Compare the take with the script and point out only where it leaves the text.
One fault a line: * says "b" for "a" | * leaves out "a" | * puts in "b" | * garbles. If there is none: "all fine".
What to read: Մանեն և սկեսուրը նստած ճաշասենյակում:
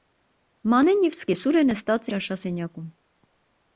all fine